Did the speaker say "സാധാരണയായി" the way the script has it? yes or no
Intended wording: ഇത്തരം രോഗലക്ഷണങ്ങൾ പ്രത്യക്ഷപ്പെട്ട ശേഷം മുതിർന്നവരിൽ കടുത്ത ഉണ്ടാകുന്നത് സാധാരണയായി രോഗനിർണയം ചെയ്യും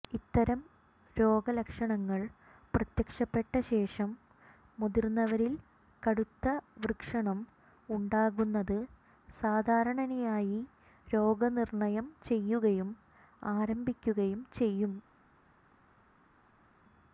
yes